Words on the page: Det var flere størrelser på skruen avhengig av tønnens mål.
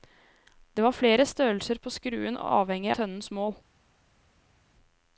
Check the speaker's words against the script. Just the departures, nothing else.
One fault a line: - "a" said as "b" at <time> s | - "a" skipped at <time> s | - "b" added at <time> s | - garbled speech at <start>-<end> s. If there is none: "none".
- "av" skipped at 2.9 s